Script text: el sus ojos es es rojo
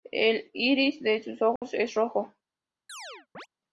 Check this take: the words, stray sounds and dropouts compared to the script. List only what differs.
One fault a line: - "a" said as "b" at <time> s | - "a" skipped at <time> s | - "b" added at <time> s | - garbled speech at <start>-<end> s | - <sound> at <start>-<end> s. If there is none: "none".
- "iris de" added at 0.5 s
- dropout at 1.6-1.6 s
- "es" skipped at 1.9 s
- chirp at 2.9-3.5 s